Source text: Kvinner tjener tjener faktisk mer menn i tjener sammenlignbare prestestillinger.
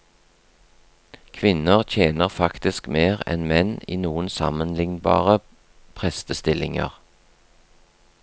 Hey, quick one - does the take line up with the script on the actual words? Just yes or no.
no